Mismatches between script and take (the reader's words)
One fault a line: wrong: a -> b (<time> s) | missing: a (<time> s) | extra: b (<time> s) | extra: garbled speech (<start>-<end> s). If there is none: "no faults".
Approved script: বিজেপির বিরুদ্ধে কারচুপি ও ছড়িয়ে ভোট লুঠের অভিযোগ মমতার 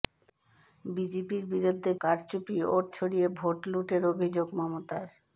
no faults